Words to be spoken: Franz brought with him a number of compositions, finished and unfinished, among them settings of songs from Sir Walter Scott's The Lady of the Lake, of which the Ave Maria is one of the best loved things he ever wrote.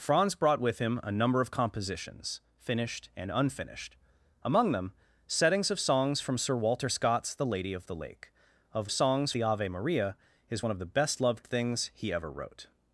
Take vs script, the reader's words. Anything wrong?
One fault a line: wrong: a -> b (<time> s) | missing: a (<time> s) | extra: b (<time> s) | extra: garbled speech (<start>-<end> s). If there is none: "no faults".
wrong: which -> songs (8.9 s)